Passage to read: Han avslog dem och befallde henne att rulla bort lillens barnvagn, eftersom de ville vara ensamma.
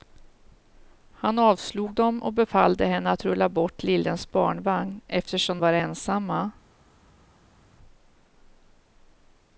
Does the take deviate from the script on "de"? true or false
true